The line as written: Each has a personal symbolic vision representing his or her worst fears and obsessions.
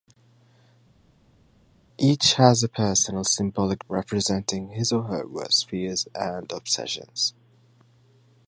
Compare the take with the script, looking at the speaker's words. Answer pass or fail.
fail